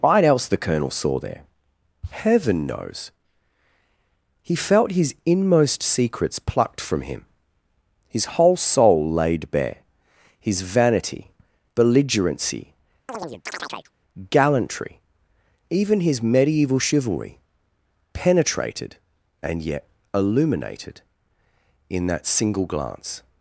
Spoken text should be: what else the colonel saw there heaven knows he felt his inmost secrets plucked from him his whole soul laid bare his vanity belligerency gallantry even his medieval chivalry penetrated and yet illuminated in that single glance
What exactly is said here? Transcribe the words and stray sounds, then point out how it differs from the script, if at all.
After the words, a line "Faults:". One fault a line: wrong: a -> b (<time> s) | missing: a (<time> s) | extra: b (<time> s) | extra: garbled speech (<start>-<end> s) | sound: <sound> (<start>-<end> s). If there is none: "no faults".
what else the colonel saw there heaven knows he felt his inmost secrets plucked from him his whole soul laid bare his vanity belligerency gallantry even his medieval chivalry penetrated and yet illuminated in that single glance
Faults:
sound: chirp (13.1-13.9 s)